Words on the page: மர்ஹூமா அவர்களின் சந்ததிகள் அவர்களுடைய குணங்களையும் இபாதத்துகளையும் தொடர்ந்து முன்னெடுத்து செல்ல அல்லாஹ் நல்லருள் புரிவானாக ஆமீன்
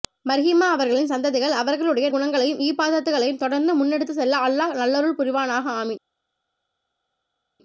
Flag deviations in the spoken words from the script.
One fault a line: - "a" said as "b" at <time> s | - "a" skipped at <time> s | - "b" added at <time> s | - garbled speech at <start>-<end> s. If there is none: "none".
none